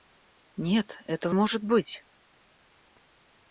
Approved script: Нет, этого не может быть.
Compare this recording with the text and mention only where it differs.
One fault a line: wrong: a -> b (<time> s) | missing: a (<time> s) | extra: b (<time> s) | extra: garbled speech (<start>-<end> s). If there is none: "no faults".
missing: не (1.3 s)